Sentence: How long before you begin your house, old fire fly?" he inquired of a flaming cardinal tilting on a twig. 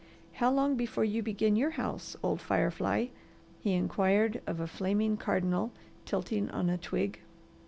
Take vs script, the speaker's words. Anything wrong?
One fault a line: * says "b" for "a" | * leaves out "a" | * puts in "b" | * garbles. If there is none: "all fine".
all fine